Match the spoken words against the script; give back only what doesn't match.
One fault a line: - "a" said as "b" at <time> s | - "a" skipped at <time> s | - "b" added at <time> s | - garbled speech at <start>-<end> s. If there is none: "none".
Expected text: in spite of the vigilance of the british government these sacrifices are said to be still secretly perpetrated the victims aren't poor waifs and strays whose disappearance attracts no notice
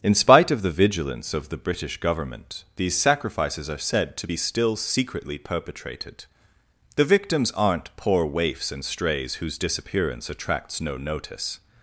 none